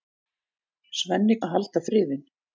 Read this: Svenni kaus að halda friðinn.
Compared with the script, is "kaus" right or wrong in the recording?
wrong